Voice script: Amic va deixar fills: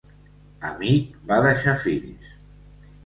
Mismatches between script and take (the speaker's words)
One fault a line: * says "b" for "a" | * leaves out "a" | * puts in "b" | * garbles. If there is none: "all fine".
all fine